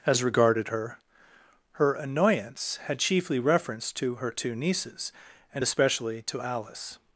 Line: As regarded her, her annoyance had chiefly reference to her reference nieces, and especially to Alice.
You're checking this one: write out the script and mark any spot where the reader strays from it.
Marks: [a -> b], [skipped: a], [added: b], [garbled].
As regarded her, her annoyance had chiefly reference to her [reference -> two] nieces, and especially to Alice.